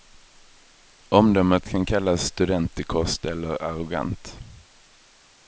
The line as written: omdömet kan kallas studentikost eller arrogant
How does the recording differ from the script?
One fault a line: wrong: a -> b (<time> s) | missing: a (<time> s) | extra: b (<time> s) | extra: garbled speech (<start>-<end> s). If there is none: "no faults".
no faults